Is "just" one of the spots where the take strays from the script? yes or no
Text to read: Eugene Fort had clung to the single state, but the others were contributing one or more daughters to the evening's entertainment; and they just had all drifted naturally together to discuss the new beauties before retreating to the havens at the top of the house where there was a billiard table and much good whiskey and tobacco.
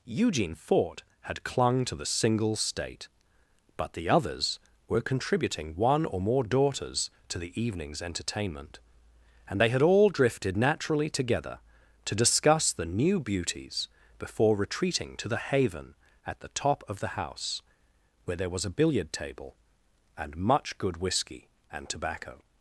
yes